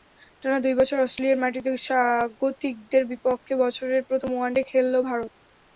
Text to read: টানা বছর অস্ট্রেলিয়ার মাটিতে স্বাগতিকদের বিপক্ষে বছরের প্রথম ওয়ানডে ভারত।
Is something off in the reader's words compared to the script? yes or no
yes